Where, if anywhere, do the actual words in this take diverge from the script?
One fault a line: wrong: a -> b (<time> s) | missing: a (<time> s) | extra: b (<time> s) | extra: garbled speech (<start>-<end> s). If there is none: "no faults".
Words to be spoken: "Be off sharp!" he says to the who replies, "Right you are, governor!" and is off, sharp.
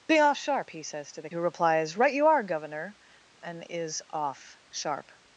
no faults